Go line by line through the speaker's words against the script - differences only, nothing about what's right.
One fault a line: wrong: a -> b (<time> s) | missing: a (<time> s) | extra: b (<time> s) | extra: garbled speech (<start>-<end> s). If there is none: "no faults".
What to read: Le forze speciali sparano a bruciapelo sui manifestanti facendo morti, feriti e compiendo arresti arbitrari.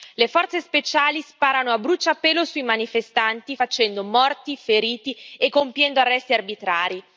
no faults